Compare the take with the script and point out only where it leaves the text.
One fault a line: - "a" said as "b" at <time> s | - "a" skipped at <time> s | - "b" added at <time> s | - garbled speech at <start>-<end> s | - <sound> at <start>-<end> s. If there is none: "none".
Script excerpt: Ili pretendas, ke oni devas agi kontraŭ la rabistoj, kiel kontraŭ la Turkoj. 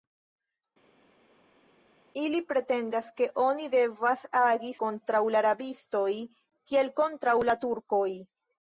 none